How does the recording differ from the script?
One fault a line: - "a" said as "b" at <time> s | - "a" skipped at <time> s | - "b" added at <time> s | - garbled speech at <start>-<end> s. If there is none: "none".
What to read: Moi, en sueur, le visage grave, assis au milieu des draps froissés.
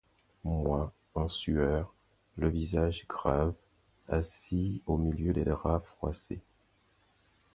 none